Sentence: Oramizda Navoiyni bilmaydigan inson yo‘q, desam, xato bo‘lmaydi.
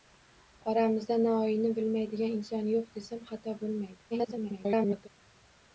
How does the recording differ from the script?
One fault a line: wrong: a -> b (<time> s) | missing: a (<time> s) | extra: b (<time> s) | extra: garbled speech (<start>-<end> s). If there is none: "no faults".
extra: garbled speech (4.1-5.1 s)